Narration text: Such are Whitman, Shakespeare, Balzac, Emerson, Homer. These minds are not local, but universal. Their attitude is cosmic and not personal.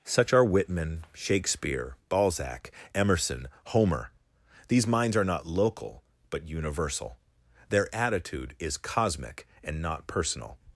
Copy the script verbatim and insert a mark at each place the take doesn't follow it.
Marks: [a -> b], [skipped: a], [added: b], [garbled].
Such are Whitman, Shakespeare, Balzac, Emerson, Homer. These minds are not local, but universal. Their attitude is cosmic and not personal.